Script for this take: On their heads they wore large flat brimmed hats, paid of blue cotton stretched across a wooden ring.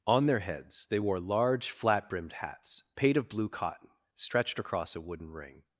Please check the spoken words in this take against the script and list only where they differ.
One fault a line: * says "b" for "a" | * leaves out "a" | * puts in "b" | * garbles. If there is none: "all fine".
all fine